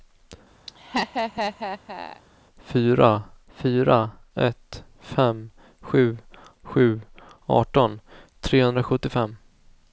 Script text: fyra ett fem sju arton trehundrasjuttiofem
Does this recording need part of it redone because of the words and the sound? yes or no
yes